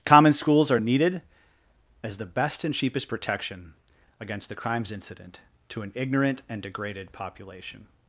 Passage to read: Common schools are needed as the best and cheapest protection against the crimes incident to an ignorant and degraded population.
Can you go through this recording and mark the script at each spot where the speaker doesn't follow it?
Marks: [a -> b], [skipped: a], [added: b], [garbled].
Common schools are needed as the best and cheapest protection against the crimes incident to an ignorant and degraded population.